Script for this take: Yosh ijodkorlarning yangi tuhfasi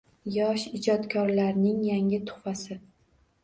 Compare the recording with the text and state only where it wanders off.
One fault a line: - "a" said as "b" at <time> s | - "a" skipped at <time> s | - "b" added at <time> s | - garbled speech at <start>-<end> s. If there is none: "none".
none